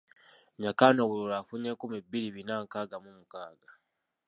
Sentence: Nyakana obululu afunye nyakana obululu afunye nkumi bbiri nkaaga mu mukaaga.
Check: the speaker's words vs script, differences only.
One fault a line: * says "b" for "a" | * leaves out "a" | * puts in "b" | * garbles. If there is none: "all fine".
* leaves out "nyakana obululu afunye"
* puts in "bina"